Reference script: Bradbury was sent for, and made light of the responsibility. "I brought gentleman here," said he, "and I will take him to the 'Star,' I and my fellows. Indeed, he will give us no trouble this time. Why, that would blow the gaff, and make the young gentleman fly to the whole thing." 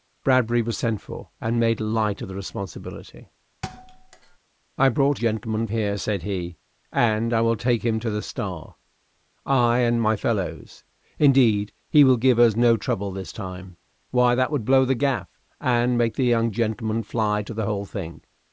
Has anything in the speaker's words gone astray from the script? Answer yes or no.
no